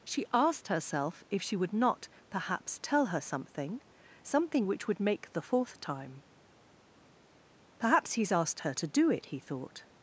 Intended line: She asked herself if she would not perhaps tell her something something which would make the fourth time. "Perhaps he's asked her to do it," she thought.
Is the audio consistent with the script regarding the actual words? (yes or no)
no